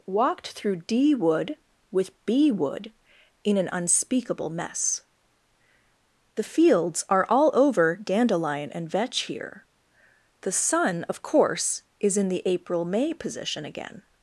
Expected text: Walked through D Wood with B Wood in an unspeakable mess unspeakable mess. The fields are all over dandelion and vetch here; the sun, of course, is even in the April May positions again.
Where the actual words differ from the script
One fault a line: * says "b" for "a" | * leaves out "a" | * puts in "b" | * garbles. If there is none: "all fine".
* leaves out "unspeakable mess"
* leaves out "even"
* says "position" for "positions"